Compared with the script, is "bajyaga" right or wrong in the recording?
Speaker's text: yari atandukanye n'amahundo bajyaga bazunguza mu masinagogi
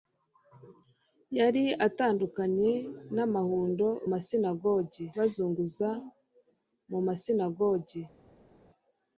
wrong